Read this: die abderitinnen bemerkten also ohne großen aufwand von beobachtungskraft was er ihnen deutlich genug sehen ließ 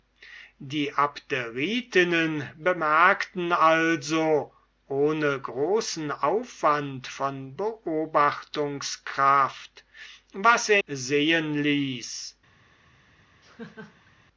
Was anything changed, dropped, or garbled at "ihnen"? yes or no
yes